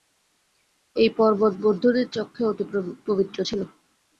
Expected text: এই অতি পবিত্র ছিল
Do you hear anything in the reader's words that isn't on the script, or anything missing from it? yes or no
yes